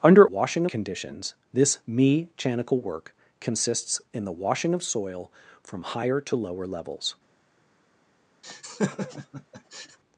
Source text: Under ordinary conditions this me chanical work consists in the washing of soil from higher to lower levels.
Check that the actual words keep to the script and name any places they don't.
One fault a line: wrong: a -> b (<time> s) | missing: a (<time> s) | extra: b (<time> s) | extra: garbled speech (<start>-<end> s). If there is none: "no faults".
wrong: ordinary -> washing (0.2 s)